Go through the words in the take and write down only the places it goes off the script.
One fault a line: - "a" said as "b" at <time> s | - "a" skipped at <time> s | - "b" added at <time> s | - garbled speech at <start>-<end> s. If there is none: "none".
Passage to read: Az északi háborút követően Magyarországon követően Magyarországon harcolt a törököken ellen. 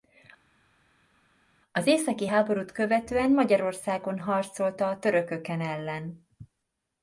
- "követően Magyarországon" skipped at 4.2 s